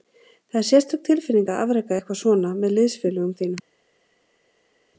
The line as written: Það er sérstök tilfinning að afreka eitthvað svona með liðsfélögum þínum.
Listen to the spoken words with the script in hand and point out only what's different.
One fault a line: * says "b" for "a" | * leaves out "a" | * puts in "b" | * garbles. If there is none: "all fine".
all fine